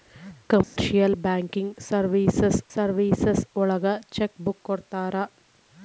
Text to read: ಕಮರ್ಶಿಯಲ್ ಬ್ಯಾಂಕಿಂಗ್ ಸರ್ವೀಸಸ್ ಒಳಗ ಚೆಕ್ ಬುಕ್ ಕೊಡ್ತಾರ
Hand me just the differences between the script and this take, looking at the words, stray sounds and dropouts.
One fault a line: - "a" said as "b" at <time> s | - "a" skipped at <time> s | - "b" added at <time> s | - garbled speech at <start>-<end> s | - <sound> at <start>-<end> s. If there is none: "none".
- dropout at 0.6-0.8 s
- "ಸರ್ವೀಸಸ್" added at 2.7 s